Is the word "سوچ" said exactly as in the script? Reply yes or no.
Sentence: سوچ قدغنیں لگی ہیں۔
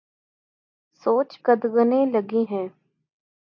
yes